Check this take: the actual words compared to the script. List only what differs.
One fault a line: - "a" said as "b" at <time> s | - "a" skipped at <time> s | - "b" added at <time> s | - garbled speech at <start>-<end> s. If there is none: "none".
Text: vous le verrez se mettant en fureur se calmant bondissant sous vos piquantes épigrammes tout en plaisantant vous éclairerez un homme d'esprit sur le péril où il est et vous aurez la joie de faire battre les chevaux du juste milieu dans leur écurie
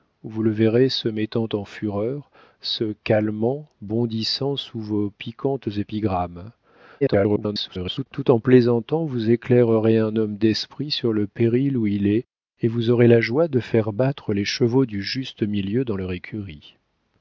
- garbled speech at 7.0-8.1 s